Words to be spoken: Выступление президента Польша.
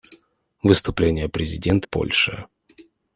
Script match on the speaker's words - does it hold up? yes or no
yes